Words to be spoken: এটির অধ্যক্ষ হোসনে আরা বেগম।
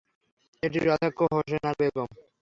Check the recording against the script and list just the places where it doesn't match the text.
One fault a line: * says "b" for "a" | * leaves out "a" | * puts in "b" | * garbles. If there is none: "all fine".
all fine